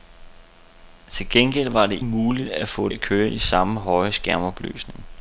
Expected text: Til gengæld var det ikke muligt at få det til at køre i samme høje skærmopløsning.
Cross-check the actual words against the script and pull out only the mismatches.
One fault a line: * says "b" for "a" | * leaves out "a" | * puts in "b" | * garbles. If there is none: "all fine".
* leaves out "ikke"
* leaves out "det til"